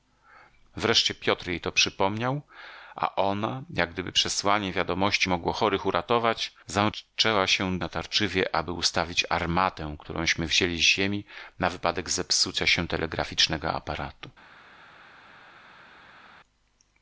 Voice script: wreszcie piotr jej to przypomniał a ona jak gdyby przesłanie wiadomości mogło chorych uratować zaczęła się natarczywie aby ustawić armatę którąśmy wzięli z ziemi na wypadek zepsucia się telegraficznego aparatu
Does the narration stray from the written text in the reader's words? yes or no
no